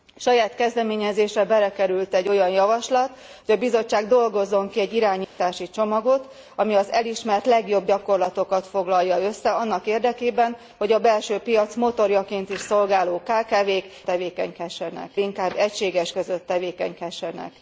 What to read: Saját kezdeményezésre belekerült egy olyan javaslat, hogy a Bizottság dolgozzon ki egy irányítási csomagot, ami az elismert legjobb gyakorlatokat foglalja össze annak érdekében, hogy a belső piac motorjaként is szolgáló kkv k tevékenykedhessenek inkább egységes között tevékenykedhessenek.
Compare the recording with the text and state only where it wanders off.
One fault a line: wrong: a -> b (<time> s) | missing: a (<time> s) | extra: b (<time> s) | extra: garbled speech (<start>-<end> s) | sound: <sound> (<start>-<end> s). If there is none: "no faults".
sound: dropout (5.2-5.4 s)